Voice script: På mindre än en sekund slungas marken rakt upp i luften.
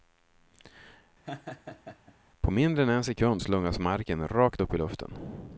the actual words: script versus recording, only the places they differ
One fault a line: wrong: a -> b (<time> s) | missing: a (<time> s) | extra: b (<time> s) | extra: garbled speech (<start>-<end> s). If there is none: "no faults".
no faults